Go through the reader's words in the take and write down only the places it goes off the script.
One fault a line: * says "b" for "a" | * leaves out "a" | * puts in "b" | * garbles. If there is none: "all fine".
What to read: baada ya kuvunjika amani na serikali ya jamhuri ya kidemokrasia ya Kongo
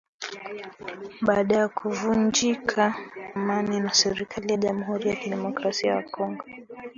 all fine